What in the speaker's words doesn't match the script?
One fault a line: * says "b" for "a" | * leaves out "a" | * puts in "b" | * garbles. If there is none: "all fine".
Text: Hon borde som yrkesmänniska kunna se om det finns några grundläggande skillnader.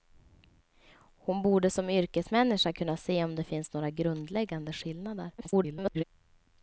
* garbles